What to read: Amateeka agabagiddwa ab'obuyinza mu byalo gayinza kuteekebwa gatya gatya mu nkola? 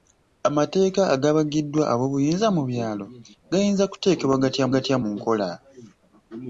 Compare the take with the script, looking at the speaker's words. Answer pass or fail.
pass